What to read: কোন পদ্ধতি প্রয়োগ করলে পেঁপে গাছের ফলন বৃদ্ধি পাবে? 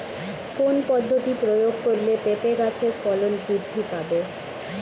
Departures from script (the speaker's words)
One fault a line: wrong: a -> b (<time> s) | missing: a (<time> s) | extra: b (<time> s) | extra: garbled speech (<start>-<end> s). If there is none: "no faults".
no faults